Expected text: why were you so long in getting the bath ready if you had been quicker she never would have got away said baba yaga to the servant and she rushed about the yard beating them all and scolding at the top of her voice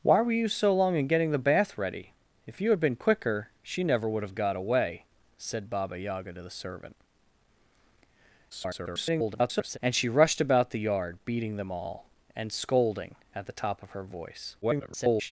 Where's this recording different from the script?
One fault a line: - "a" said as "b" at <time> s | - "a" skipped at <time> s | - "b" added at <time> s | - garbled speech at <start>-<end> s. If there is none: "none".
- garbled speech at 8.5-9.8 s
- garbled speech at 14.6-15.3 s